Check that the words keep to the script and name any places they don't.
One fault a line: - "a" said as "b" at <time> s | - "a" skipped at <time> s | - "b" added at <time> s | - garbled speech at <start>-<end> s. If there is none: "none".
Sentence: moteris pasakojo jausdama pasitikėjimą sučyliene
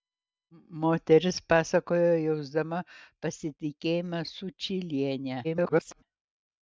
- garbled speech at 5.4-6.0 s